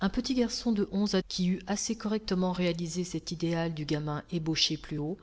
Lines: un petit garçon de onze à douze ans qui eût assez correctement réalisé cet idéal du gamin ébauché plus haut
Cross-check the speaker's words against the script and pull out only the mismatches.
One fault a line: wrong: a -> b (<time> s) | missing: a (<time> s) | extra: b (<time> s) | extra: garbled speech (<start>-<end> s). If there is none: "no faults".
missing: douze ans (1.2 s)